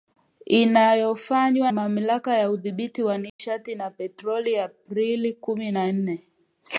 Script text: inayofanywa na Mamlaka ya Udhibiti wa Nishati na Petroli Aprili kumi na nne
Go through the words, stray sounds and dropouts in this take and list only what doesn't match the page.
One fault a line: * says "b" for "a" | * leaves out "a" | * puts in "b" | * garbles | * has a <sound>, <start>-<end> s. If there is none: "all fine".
* leaves out "na"
* has a dropout, 3.3-3.4 s